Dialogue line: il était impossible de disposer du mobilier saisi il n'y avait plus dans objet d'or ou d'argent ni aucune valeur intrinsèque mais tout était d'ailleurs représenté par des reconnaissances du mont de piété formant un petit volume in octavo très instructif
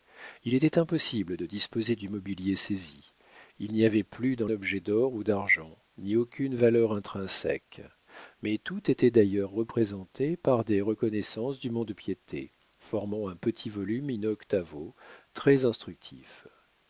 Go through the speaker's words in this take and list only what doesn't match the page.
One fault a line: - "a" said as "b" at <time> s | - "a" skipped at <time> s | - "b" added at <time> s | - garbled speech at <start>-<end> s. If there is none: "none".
none